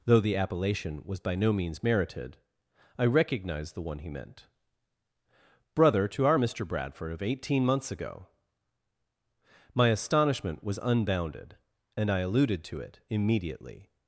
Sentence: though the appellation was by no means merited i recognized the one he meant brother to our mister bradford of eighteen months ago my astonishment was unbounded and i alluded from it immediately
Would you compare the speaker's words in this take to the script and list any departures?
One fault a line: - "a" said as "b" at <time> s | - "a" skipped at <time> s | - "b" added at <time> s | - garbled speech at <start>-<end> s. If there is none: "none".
- "from" said as "to" at 12.6 s